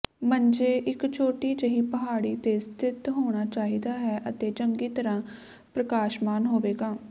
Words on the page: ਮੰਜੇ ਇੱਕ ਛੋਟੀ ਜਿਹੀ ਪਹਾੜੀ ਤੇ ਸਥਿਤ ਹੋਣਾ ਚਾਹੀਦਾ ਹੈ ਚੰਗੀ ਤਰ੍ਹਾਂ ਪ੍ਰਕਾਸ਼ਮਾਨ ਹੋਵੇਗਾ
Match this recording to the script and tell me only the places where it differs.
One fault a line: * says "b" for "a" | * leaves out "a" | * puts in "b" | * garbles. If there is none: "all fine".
* puts in "ਅਤੇ"